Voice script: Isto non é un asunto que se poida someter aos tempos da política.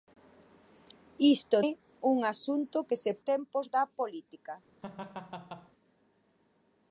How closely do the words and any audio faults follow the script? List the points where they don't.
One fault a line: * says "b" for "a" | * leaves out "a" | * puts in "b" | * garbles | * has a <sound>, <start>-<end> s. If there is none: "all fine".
* leaves out "non"
* leaves out "poida someter aos"
* has a laugh, 4.8-5.7 s